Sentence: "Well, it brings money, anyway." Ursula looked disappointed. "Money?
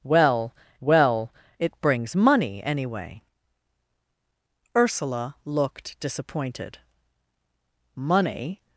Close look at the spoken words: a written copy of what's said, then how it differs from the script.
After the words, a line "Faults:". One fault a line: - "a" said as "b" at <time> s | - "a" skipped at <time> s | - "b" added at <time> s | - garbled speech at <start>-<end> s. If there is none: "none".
"Well well, it brings money, anyway." Ursula looked disappointed. "Money?
Faults:
- "well" added at 0.8 s